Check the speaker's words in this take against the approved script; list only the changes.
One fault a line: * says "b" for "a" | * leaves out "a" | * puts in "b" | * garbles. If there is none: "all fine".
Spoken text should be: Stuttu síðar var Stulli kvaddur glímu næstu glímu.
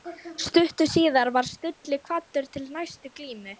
* says "til" for "glímu"